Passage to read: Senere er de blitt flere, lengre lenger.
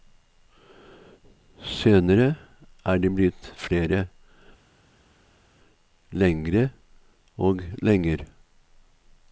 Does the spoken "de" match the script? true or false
true